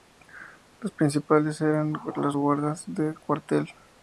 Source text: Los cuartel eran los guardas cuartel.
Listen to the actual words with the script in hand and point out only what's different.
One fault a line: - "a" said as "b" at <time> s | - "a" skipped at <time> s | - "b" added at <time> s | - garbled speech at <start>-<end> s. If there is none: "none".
- "cuartel" said as "principales" at 0.9 s
- "de" added at 2.9 s